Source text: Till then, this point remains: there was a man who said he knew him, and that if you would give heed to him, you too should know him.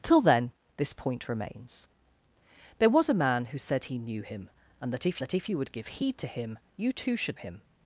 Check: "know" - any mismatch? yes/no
yes